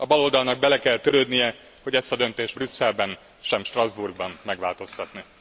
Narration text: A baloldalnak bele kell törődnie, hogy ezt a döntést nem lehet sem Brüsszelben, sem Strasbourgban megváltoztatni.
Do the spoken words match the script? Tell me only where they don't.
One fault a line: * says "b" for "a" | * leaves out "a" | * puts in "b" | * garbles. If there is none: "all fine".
* leaves out "nem lehet sem"